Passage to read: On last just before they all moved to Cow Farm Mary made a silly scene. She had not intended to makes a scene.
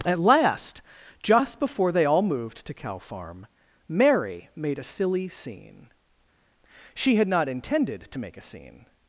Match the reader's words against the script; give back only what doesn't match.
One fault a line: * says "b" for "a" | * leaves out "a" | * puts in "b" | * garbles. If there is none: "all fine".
* says "At" for "On"
* says "make" for "makes"